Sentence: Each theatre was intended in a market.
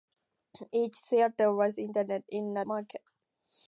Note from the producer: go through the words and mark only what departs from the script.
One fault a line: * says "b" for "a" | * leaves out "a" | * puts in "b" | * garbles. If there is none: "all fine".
all fine